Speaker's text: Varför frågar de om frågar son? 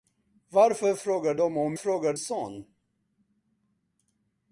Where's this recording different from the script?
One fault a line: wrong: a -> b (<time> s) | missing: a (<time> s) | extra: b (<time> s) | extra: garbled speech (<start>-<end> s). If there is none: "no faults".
no faults